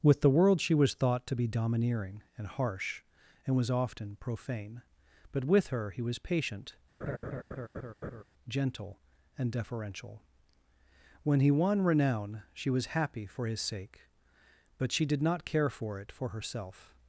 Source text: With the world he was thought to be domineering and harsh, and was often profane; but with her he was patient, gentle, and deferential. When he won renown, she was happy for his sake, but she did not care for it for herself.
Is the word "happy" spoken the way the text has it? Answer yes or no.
yes